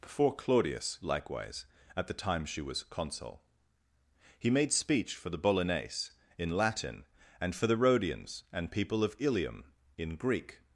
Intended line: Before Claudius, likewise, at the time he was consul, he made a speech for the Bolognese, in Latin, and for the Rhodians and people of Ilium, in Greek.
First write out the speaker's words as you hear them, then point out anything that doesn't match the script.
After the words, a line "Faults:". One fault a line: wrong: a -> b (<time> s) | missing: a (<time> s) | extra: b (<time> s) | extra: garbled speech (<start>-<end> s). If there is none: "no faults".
Before Claudius, likewise, at the time she was consul, he made speech for the Bolognese, in Latin, and for the Rhodians and people of Ilium, in Greek.
Faults:
wrong: he -> she (2.5 s)
missing: a (4.7 s)